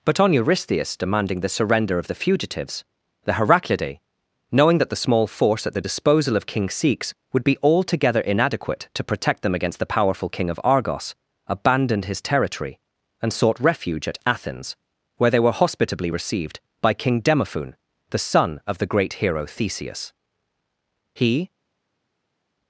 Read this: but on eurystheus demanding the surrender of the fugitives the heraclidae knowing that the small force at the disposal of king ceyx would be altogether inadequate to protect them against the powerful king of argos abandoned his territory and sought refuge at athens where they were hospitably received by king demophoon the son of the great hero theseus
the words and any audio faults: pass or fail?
fail